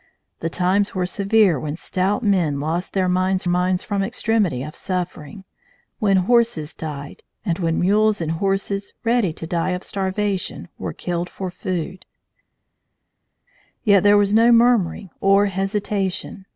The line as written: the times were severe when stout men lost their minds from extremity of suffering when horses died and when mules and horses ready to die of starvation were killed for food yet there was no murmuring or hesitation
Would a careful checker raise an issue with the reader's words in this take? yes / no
yes